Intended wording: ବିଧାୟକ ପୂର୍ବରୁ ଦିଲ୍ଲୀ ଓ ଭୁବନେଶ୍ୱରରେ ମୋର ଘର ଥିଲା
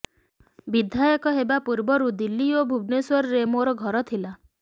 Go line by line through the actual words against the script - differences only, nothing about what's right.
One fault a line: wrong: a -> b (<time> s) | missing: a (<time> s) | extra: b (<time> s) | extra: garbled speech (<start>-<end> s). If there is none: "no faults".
extra: ହେବା (1.4 s)